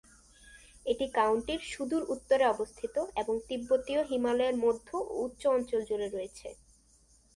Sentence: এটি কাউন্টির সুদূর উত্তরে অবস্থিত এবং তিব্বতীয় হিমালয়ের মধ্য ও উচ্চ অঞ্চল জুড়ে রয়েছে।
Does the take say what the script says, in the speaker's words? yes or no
yes